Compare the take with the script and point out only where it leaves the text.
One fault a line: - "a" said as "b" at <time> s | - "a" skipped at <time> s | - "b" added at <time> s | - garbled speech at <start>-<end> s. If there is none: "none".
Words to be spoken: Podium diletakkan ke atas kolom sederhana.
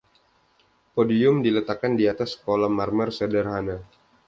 - "ke" said as "di" at 1.9 s
- "marmer" added at 2.7 s